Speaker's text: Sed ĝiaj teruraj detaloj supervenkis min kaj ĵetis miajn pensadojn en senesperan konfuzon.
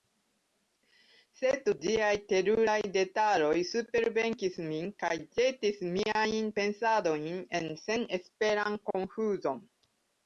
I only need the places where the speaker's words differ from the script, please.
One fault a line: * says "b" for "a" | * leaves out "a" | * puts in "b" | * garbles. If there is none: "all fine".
all fine